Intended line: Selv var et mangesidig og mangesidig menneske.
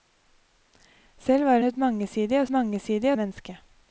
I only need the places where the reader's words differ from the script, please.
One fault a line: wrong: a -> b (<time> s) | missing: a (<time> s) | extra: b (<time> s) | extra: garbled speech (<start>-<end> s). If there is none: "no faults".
no faults